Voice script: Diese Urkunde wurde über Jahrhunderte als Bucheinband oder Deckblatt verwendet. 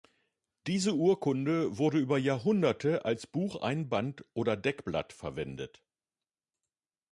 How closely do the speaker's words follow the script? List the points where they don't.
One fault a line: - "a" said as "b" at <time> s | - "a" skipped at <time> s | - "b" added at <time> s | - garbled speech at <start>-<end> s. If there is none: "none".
none